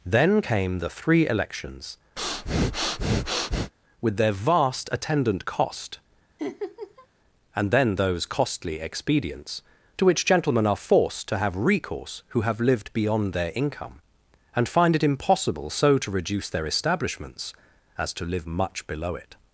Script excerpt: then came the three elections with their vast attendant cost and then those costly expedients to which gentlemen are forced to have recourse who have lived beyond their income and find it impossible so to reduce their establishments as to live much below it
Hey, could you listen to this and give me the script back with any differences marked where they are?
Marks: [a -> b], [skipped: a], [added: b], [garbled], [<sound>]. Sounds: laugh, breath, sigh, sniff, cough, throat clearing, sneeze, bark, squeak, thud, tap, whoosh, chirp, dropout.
then came the three elections [breath] with their vast attendant cost [laugh] and then those costly expedients to which gentlemen are forced to have recourse who have lived beyond their income and find it impossible so to reduce their establishments as to live much below it